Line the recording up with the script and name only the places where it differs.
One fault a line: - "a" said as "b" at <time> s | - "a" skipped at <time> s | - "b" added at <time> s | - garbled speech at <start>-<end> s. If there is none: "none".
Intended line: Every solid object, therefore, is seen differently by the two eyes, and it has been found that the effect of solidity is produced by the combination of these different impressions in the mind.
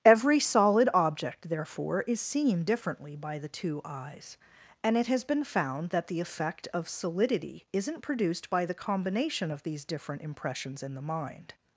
- "is" said as "isn't" at 7.7 s